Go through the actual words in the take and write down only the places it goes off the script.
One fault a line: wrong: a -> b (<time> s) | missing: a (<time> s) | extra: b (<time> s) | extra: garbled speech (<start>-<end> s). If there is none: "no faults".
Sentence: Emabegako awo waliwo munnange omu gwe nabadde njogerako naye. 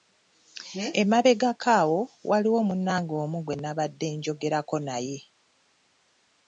no faults